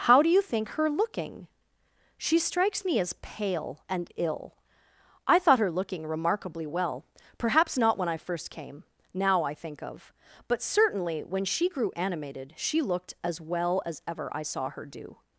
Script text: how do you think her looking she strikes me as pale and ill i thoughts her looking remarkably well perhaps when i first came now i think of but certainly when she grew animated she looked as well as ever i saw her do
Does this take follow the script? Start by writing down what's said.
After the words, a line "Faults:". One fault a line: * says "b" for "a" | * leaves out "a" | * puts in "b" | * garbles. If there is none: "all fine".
how do you think her looking she strikes me as pale and ill i thought her looking remarkably well perhaps not when i first came now i think of but certainly when she grew animated she looked as well as ever i saw her do
Faults:
* says "thought" for "thoughts"
* puts in "not"